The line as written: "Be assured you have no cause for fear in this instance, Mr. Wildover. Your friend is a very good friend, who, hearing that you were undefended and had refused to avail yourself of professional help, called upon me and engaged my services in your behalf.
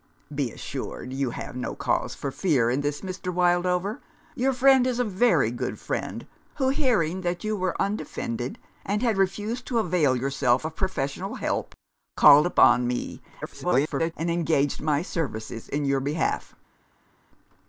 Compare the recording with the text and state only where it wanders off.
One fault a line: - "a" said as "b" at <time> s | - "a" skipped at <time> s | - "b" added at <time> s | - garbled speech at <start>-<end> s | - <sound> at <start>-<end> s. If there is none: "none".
- "instance" skipped at 3.0 s
- garbled speech at 13.4-14.1 s